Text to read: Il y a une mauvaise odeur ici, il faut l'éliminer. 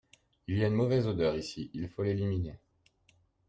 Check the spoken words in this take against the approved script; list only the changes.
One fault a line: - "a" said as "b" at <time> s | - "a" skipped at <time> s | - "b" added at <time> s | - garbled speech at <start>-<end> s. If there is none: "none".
none